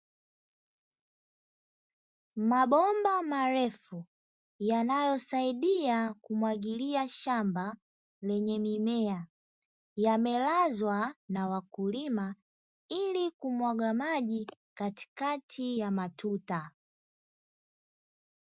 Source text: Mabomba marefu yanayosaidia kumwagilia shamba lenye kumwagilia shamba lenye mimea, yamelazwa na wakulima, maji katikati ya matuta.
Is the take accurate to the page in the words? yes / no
no